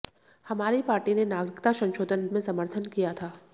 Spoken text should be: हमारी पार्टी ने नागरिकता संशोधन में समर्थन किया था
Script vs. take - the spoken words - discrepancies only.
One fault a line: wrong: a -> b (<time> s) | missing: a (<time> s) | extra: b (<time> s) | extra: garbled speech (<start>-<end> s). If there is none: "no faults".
no faults